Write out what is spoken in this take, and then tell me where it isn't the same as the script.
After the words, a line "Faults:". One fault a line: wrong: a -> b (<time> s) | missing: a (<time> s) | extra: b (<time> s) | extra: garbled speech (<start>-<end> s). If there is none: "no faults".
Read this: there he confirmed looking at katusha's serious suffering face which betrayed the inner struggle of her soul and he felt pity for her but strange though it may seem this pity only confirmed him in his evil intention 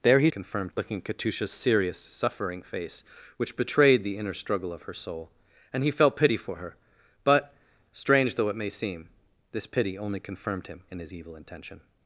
there he confirmed looking at katusha's serious suffering face which betrayed the inner struggle of her soul and he felt pity for her but strange though it may seem this pity only confirmed him in his evil intention
Faults:
no faults